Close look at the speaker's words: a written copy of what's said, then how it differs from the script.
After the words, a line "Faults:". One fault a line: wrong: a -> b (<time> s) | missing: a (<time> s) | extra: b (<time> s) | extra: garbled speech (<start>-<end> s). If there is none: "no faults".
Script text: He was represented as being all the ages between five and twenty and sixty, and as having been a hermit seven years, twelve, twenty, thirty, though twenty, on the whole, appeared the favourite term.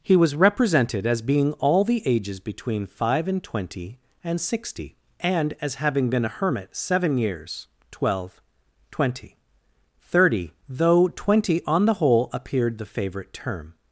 He was represented as being all the ages between five and twenty and sixty, and as having been a hermit seven years, twelve, twenty, thirty, though twenty, on the whole, appeared the favourite term.
Faults:
no faults